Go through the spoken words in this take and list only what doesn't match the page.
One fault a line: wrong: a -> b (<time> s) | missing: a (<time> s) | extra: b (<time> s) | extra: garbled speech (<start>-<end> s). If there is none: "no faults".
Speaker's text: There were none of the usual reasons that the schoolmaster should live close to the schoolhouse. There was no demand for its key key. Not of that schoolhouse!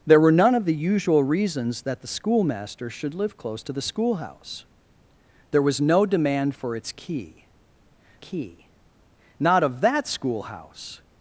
no faults